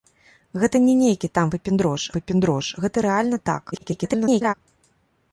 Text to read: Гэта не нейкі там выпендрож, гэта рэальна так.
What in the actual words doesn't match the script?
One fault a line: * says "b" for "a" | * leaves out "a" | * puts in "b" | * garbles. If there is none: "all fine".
* puts in "выпендрож"
* garbles